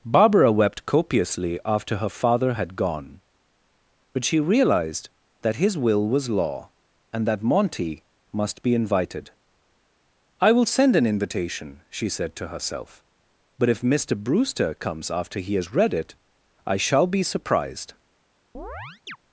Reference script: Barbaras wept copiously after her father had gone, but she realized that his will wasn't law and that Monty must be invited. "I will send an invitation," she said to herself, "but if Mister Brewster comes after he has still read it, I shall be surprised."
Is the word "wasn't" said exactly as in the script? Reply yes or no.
no